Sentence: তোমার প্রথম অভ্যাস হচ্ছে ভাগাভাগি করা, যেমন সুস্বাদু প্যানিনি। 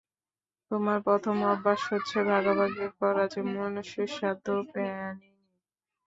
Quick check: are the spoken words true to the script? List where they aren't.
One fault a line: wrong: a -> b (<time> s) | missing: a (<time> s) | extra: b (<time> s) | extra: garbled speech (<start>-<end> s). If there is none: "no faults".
no faults